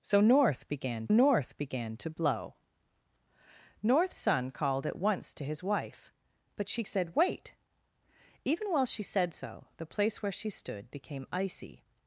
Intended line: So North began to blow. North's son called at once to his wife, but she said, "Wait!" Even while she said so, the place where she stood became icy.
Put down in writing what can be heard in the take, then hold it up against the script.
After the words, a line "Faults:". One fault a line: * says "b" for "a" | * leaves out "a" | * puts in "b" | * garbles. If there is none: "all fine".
So North began North began to blow. North's son called at once to his wife, but she said, "Wait!" Even while she said so, the place where she stood became icy.
Faults:
* puts in "North began"